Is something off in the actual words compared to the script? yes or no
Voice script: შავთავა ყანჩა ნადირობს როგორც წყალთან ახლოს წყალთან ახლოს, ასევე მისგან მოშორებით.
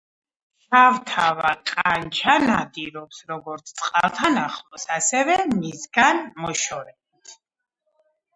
yes